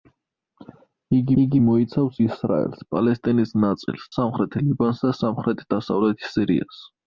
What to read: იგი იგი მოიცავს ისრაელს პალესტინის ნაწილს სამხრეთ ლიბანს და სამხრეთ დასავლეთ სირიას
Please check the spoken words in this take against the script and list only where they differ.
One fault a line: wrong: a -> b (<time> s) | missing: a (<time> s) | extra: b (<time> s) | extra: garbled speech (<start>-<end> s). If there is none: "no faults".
no faults